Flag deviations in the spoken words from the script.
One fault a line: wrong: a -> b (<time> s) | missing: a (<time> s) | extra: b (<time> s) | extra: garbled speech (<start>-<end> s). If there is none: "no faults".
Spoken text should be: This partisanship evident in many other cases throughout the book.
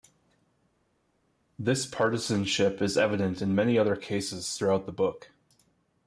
extra: is (2.8 s)